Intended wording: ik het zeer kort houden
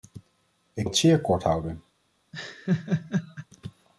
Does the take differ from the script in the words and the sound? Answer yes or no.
yes